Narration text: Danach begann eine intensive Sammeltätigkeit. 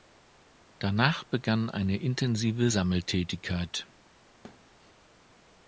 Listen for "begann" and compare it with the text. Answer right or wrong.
right